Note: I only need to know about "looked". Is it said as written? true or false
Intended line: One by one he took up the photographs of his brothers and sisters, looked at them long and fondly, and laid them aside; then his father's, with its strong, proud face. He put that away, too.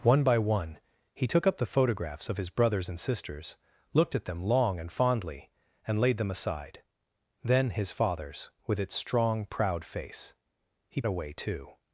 true